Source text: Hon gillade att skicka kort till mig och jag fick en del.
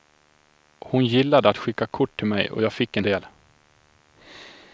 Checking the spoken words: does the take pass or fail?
pass